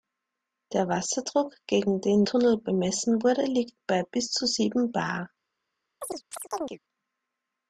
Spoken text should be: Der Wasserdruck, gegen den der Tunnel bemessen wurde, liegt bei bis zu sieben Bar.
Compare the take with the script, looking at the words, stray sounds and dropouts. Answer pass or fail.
fail